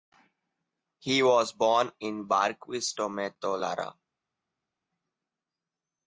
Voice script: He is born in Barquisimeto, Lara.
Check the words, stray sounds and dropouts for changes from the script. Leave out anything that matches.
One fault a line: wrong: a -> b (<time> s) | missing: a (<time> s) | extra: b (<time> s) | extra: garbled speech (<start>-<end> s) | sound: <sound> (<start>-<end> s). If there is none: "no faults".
wrong: is -> was (1.2 s)